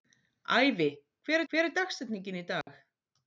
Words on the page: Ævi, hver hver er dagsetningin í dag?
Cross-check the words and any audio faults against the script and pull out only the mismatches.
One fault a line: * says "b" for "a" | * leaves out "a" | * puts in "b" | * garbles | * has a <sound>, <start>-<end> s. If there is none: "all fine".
* has a dropout, 2.6-2.7 s